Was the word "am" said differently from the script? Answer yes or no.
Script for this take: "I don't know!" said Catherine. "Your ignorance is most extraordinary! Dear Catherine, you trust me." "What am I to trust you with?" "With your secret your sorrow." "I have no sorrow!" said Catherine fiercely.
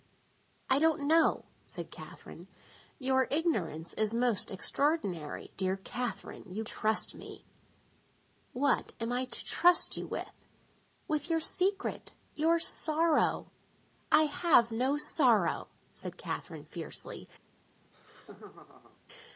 no